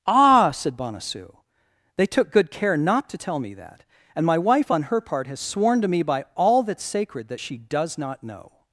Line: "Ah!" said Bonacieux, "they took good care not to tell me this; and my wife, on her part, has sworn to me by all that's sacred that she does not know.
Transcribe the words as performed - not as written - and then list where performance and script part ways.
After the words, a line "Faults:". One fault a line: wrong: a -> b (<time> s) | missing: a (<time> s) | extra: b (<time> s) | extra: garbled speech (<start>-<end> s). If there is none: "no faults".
"Ah!" said Bonacieux, "they took good care not to tell me that; and my wife, on her part, has sworn to me by all that's sacred that she does not know.
Faults:
wrong: this -> that (3.5 s)